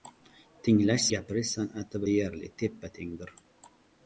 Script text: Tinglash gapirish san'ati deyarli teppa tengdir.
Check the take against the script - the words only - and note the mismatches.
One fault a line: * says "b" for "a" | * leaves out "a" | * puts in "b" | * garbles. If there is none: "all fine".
all fine